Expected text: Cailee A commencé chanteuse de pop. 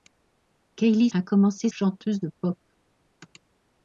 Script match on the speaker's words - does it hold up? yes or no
yes